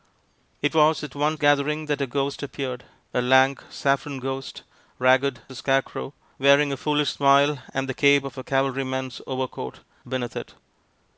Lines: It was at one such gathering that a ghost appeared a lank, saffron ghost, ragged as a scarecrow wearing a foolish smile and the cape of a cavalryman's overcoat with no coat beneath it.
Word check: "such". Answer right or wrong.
wrong